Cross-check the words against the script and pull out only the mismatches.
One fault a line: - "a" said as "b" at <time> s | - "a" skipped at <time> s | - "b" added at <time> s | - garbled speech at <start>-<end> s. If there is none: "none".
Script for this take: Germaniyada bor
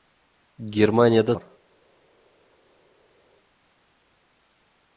none